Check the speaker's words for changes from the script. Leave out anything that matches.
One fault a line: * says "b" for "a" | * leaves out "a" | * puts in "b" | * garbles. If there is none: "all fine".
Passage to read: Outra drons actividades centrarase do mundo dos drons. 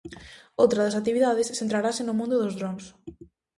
* says "das" for "drons"
* says "no" for "do"